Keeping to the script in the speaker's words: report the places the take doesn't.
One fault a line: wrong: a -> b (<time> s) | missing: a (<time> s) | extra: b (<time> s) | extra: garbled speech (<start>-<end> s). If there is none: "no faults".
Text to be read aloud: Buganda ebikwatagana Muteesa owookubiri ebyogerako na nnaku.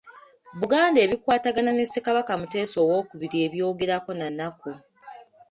extra: ne Ssekabaka (1.7 s)